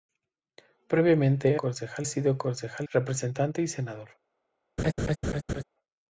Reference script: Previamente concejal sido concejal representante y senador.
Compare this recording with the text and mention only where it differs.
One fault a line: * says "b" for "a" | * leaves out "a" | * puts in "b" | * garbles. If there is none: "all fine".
all fine